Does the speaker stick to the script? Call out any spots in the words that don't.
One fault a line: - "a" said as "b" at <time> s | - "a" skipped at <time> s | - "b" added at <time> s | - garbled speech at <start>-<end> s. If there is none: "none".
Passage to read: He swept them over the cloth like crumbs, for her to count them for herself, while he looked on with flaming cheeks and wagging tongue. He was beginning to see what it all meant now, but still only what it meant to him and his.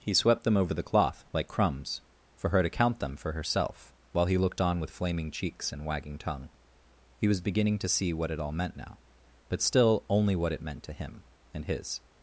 none